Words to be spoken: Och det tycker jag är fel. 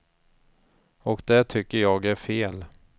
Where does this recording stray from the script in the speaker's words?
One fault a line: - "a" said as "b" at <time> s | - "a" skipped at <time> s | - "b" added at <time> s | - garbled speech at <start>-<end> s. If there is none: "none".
none